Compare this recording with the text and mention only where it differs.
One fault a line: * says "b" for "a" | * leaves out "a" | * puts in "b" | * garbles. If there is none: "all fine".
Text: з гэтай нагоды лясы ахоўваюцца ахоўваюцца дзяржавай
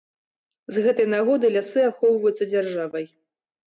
* leaves out "ахоўваюцца"